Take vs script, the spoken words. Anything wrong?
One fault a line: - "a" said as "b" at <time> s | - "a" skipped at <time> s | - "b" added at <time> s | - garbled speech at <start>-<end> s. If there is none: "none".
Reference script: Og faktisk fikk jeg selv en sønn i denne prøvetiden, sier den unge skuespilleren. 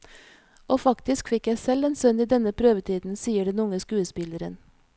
none